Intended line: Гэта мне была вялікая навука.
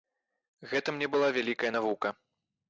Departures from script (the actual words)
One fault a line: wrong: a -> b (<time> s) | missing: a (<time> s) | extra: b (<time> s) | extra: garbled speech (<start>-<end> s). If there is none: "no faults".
no faults